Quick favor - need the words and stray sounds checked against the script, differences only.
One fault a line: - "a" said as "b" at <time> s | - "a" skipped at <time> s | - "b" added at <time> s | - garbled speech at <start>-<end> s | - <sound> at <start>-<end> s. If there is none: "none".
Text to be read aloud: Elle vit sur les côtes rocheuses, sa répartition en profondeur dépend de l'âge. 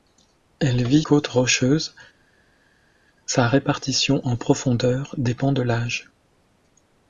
- "sur les" skipped at 1.0 s